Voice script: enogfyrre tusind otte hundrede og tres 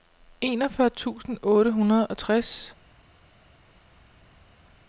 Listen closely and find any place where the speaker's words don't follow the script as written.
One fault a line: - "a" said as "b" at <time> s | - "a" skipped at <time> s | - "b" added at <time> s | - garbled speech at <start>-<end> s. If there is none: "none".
none